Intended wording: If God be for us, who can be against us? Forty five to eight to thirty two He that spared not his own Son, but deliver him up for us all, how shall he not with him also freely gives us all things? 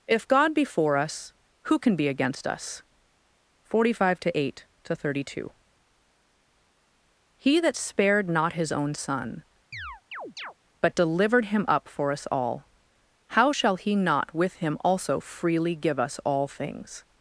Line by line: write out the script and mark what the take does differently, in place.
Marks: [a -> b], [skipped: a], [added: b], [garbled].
If God be for us, who can be against us? Forty five to eight to thirty two He that spared not his own Son, but [deliver -> delivered] him up for us all, how shall he not with him also freely [gives -> give] us all things?